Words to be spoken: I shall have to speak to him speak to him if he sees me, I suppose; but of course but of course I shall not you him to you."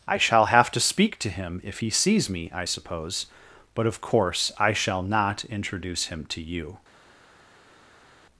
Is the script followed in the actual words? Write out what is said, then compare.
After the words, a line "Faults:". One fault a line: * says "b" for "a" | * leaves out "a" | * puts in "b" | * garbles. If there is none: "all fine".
I shall have to speak to him if he sees me, I suppose; but of course I shall not introduce him to you."
Faults:
* leaves out "speak to him"
* leaves out "but of course"
* says "introduce" for "you"